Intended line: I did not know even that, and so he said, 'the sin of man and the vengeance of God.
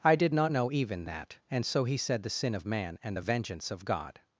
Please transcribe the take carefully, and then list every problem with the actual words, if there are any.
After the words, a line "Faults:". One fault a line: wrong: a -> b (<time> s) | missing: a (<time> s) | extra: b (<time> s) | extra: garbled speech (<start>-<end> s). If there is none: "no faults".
I did not know even that, and so he said, 'the sin of man and the vengeance of God.
Faults:
no faults